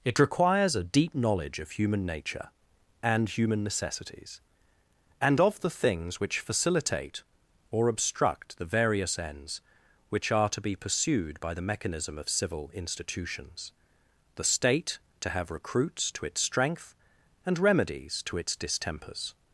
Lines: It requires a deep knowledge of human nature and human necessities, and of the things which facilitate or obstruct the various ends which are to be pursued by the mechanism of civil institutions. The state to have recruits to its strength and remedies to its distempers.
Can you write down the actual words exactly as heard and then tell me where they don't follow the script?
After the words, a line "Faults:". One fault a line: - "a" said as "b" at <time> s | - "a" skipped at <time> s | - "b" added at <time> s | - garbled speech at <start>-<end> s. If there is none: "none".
It requires a deep knowledge of human nature and human necessities, and of the things which facilitate or obstruct the various ends which are to be pursued by the mechanism of civil institutions. The state to have recruits to its strength and remedies to its distempers.
Faults:
none